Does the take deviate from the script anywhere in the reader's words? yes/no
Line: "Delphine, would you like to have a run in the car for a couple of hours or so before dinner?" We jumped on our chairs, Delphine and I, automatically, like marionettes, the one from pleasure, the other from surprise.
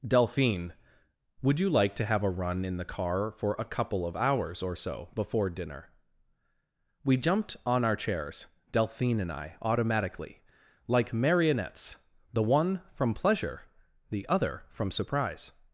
no